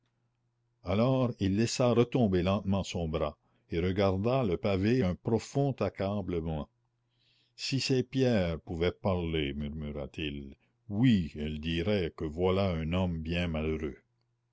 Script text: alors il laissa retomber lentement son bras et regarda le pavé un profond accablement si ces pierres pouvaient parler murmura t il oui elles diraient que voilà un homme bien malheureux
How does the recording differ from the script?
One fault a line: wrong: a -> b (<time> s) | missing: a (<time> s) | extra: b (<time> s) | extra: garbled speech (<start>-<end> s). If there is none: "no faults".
no faults